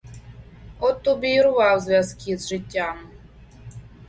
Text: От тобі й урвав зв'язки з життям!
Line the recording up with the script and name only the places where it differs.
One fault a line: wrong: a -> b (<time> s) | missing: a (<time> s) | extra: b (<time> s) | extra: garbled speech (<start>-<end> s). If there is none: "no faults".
no faults